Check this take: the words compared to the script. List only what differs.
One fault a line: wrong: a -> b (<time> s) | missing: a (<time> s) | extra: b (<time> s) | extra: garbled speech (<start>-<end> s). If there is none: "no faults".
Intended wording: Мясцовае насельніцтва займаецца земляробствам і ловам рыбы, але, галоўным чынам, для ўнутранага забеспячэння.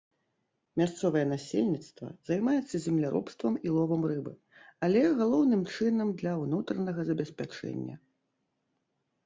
no faults